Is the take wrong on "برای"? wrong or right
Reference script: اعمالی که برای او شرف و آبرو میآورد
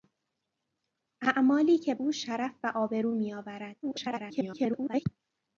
wrong